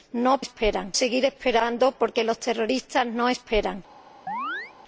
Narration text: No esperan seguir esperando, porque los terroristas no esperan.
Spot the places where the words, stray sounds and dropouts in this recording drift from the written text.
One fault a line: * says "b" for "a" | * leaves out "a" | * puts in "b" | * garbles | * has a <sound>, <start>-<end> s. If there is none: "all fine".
* has a chirp, 4.3-4.7 s